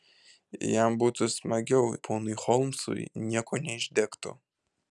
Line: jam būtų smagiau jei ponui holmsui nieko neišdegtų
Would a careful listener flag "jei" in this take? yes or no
yes